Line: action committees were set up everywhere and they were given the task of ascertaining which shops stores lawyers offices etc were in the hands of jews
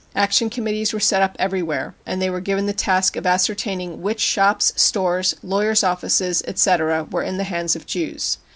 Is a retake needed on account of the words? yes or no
no